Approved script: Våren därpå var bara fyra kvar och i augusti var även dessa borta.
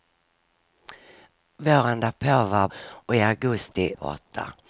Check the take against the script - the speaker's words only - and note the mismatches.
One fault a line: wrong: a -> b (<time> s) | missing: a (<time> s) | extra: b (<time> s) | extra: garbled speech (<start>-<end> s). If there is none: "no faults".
missing: bara fyra kvar (2.7 s)
missing: var även dessa (3.9 s)